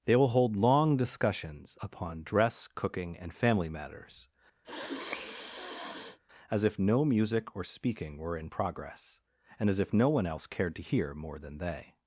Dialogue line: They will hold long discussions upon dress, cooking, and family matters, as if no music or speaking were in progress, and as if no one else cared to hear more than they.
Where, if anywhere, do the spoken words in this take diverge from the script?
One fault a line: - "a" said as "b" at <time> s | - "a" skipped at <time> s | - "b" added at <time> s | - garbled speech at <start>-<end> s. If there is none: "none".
none